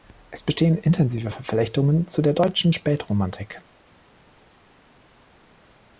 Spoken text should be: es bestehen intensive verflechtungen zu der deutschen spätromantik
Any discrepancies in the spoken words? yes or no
no